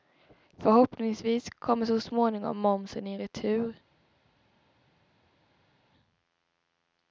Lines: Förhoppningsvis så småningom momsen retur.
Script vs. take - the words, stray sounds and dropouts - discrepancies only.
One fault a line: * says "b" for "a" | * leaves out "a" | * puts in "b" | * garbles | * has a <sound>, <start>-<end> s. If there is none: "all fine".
* puts in "kommer"
* puts in "i"